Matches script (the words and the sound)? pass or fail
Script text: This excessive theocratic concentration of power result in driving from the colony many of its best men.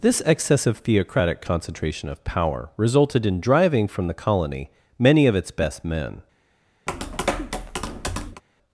fail